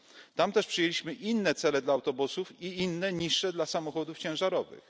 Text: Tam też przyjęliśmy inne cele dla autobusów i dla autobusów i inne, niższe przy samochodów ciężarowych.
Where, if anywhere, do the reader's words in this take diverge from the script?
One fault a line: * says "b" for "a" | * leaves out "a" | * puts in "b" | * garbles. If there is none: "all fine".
* leaves out "dla autobusów i"
* says "dla" for "przy"